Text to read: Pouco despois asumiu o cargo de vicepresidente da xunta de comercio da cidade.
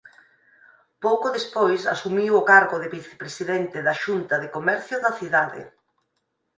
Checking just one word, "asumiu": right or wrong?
right